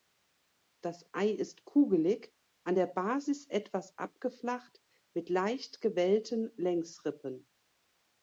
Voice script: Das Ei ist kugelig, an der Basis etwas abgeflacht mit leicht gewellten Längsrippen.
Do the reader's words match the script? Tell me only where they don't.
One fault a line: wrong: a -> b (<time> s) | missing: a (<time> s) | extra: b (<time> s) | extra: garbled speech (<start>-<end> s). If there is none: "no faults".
no faults